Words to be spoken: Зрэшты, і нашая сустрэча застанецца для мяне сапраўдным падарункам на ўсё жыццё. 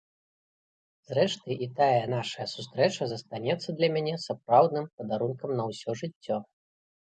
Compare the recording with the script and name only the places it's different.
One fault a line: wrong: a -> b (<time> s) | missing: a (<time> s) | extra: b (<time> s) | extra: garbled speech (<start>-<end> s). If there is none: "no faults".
extra: тая (1.8 s)